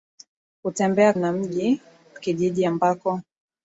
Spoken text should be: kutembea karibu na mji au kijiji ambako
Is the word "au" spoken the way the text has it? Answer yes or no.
no